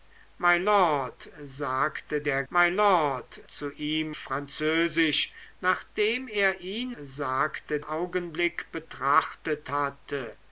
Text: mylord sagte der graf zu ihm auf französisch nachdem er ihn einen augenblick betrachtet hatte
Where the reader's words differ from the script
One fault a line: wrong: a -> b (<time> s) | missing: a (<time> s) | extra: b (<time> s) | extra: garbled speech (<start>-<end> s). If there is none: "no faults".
wrong: graf -> mylord (2.5 s)
missing: auf (4.1 s)
wrong: einen -> sagte (7.0 s)